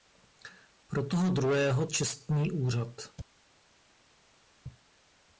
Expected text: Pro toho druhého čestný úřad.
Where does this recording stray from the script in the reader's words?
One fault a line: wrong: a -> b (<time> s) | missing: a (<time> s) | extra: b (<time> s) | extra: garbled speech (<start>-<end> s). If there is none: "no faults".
no faults